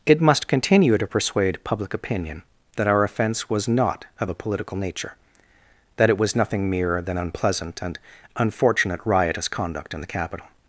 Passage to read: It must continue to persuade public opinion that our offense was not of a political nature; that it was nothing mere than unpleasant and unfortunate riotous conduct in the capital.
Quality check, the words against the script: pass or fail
pass